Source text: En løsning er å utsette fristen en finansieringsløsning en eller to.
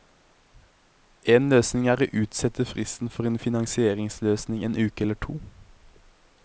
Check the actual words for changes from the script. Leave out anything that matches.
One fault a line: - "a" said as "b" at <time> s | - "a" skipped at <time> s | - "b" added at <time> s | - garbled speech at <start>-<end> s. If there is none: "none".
- "for" added at 3.1 s
- "uke" added at 4.8 s